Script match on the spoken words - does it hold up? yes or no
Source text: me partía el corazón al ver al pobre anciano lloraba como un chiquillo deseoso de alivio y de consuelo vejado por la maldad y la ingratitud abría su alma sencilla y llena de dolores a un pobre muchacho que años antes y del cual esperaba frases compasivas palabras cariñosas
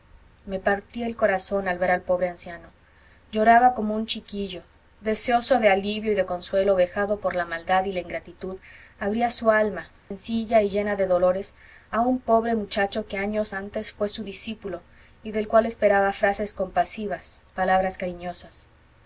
no